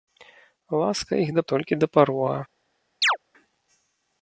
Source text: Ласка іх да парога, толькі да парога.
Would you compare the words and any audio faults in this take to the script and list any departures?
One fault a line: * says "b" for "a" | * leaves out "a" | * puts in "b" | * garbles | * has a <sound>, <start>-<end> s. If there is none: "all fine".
* leaves out "парога"
* has a chirp, 3.0-3.2 s